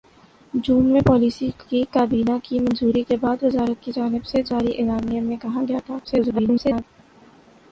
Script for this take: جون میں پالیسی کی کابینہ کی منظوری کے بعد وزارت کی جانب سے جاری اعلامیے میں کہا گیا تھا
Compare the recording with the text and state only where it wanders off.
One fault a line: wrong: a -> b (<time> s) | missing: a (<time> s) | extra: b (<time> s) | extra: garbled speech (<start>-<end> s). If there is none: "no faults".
extra: garbled speech (6.0-6.8 s)